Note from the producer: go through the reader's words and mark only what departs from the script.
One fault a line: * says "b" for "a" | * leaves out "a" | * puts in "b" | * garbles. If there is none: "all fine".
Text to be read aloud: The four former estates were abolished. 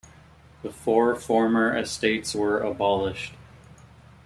all fine